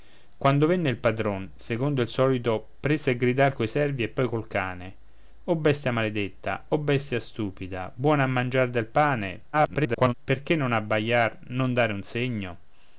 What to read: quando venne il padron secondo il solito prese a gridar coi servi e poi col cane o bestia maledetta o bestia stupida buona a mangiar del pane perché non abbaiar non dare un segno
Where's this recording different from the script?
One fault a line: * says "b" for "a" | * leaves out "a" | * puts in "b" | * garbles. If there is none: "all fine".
* garbles